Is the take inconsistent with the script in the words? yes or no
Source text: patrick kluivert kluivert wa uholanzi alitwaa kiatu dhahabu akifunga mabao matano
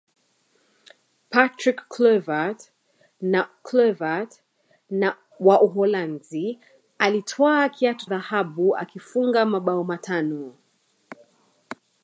no